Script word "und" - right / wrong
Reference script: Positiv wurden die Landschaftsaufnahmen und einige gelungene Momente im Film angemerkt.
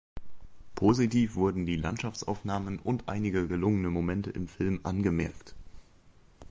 right